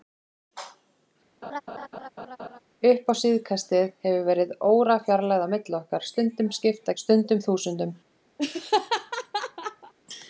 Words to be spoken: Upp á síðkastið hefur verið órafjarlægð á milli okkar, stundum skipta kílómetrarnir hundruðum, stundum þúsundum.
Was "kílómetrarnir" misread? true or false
true